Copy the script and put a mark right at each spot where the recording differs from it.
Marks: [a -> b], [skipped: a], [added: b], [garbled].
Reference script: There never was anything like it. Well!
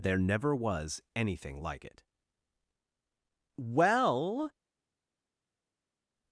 There never was anything like it. Well!